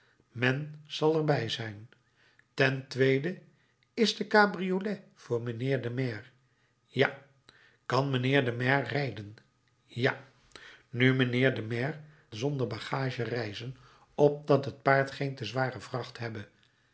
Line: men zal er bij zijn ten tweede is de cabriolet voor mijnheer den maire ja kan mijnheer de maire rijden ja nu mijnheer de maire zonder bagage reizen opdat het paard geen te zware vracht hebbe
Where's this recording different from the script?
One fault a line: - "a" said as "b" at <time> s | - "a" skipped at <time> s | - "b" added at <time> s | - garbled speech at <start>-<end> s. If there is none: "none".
none